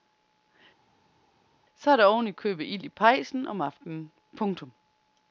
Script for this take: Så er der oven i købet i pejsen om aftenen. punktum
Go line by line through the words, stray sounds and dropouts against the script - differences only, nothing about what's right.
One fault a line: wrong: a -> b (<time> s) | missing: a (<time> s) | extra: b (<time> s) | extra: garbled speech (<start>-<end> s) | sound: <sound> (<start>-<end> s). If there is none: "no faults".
extra: ild (2.6 s)